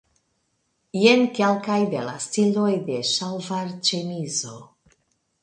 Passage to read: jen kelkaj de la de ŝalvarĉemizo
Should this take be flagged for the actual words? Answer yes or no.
yes